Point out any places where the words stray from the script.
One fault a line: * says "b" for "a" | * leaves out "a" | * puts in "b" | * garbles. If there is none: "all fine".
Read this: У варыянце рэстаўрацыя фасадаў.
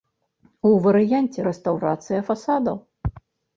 all fine